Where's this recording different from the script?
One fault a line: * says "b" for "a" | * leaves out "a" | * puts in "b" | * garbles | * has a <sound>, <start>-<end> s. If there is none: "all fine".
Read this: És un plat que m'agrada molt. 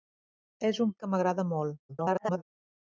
* leaves out "plat"
* garbles